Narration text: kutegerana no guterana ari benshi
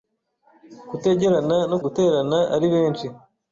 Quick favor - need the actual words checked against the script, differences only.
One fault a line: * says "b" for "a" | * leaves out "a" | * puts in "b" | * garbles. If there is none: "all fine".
all fine